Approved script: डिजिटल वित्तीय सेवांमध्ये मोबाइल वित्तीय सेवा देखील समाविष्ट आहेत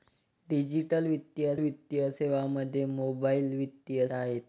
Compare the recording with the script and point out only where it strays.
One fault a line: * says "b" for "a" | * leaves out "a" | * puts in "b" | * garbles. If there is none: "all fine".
* puts in "वित्तीय"
* leaves out "सेवा देखील समाविष्ट"